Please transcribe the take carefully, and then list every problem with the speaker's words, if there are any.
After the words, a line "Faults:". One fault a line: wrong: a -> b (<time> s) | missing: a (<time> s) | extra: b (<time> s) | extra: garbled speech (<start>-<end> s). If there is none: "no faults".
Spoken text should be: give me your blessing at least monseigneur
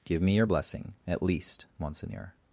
give me your blessing at least monseigneur
Faults:
no faults